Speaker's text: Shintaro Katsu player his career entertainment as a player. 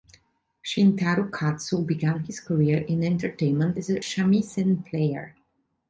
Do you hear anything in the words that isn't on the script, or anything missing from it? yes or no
yes